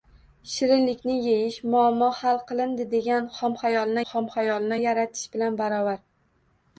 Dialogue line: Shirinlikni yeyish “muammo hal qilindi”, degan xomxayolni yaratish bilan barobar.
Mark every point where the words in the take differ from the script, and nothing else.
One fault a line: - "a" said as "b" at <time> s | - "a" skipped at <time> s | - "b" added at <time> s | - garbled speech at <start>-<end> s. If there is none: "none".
- "xomxayolni" added at 4.1 s